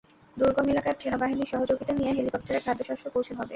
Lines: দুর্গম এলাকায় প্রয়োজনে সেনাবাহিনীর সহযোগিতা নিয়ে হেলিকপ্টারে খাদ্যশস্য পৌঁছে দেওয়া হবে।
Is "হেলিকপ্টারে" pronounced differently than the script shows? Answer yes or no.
no